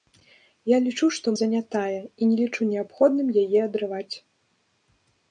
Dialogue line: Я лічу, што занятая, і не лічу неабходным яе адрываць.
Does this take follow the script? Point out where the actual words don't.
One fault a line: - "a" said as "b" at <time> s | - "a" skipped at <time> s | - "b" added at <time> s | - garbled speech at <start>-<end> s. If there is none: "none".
none